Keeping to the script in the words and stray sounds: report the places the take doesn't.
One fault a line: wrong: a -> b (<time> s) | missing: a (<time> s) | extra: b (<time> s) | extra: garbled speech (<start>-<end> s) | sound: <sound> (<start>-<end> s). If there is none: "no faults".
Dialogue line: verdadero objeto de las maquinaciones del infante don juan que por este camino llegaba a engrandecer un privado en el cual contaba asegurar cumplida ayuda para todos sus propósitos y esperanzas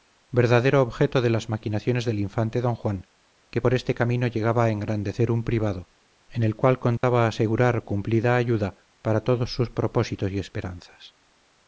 sound: dropout (7.0-7.0 s)